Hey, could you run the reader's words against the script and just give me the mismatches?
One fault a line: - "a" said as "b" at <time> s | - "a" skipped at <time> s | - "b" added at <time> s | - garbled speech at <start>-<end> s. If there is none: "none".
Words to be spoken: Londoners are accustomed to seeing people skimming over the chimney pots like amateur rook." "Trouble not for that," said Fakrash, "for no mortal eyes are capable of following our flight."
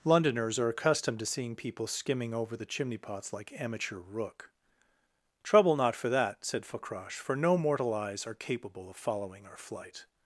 none